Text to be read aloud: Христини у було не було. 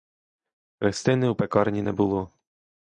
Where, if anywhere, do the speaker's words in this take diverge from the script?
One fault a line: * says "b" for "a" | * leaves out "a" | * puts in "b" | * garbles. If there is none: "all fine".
* says "пекарні" for "було"